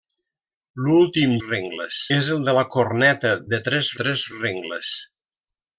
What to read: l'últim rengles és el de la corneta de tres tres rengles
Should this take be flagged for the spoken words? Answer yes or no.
no